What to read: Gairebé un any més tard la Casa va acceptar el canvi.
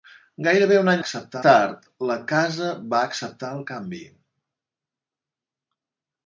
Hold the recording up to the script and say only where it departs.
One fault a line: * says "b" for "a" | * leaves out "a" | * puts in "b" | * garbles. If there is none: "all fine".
* says "acceptar" for "més"